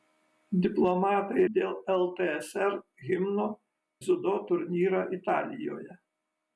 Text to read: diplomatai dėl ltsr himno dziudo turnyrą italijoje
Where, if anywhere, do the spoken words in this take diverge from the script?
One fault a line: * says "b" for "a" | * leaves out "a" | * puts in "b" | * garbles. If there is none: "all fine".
all fine